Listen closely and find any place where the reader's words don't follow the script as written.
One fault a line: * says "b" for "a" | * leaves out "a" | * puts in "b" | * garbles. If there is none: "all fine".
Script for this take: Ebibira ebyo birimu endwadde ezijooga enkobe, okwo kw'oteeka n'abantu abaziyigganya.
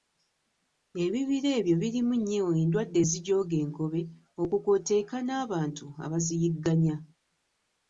* puts in "nnyo"